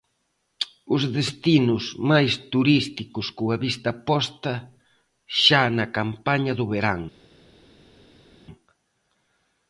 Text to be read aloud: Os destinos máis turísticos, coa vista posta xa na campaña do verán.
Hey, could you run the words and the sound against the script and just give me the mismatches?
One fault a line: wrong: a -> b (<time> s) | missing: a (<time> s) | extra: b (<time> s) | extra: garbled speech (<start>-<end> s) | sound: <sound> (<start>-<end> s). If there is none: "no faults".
no faults